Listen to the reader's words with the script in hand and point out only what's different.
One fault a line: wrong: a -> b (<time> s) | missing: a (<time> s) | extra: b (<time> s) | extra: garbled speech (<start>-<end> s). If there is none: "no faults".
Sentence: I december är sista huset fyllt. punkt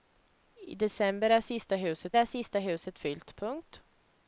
extra: är sista huset (2.1 s)